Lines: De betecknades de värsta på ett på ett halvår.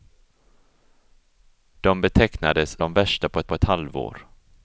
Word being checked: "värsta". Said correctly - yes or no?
yes